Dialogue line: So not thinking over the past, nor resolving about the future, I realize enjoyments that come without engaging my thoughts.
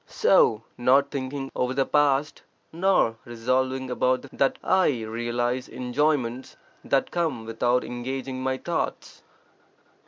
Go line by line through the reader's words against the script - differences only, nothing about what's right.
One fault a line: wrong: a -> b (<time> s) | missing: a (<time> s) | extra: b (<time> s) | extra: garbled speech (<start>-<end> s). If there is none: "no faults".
wrong: future -> that (4.3 s)